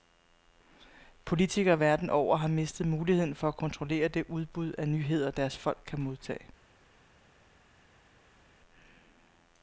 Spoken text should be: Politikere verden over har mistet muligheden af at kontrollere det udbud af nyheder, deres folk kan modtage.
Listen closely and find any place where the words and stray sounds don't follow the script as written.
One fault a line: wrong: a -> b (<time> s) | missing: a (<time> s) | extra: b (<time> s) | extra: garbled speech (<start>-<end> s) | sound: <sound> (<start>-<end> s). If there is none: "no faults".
wrong: af -> for (3.4 s)